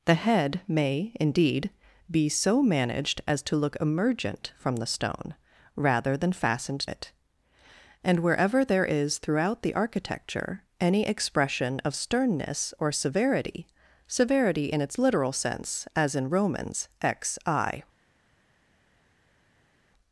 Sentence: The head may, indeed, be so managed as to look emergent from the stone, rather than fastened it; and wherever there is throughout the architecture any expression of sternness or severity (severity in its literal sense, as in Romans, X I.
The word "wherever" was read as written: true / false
true